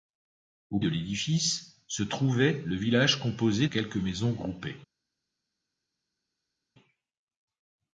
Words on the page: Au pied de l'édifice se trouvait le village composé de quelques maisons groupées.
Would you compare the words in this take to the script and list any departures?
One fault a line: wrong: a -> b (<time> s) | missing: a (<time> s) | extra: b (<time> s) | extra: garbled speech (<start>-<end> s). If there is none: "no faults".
missing: pied (0.8 s)
missing: de (3.7 s)